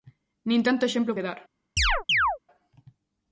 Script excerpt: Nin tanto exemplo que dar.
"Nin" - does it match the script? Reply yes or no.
yes